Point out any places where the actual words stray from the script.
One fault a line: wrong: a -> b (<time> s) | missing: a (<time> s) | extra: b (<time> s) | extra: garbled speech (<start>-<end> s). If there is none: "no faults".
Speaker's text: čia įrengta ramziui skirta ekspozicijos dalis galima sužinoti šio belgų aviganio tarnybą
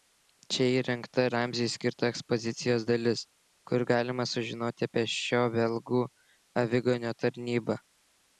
extra: kur (3.7 s)
extra: apie (4.9 s)